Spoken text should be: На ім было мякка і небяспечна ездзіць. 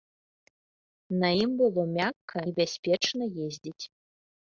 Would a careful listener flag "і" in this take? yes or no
yes